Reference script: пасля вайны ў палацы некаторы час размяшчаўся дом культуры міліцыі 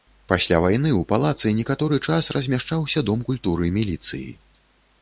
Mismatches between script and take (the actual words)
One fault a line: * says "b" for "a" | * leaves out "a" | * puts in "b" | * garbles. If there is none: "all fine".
all fine